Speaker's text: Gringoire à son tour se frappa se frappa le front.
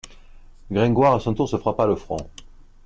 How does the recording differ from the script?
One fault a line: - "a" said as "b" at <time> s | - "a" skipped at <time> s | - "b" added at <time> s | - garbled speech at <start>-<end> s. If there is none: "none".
- "se frappa" skipped at 1.9 s